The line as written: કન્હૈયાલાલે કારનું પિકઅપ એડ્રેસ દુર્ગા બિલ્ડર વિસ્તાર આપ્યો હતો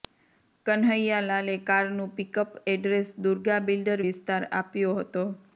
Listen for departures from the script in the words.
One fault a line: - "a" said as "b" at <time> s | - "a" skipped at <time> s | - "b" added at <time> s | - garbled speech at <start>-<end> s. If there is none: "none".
none